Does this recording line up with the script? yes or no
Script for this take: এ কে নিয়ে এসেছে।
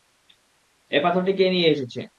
no